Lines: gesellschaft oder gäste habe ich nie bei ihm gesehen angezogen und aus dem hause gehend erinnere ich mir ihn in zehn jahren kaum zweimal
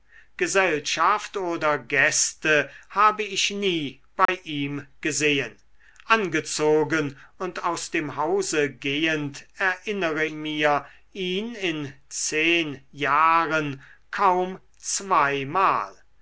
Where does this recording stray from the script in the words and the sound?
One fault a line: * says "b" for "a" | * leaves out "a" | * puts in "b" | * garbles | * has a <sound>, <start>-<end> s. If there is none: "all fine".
* has a dropout, 4.3-4.3 s
* leaves out "ich"